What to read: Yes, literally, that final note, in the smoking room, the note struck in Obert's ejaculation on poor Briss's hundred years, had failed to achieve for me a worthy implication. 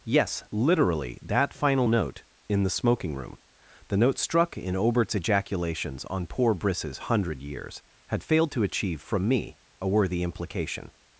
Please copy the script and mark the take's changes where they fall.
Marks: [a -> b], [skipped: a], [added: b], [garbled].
Yes, literally, that final note, in the smoking room, the note struck in Obert's [ejaculation -> ejaculations] on poor Briss's hundred years, had failed to achieve [for -> from] me a worthy implication.